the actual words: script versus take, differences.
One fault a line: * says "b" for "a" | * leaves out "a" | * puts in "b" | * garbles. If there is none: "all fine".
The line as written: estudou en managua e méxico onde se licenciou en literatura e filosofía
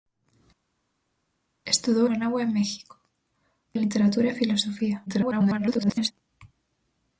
* leaves out "en"
* leaves out "onde se licenciou"
* garbles